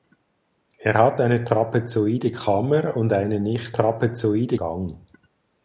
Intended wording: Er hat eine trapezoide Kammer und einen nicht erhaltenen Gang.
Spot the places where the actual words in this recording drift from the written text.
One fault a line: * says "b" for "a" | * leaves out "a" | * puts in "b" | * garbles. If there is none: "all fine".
* says "trapezoide" for "erhaltenen"